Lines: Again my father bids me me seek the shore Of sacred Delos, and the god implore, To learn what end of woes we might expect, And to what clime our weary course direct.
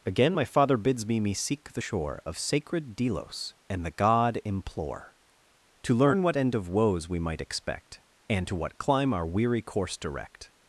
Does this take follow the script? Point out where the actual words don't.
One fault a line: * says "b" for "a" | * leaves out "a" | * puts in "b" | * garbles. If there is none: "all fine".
all fine